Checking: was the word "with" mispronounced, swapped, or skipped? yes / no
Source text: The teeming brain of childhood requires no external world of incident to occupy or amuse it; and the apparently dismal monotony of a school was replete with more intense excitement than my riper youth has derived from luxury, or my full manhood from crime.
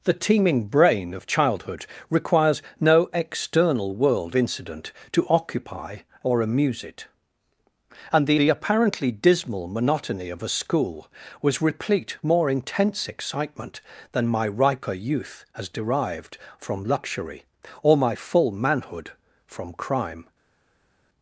yes